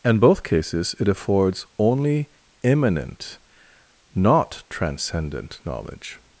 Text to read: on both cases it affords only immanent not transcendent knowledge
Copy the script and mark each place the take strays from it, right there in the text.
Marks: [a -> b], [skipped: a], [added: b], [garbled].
[on -> in] both cases it affords only immanent not transcendent knowledge